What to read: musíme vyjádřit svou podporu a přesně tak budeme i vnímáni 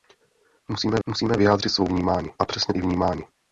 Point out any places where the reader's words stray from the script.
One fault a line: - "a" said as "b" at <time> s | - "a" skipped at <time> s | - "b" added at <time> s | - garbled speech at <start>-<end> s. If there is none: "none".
- "musíme" added at 1.1 s
- "podporu" said as "vnímáni" at 1.9 s
- "tak budeme" skipped at 2.7 s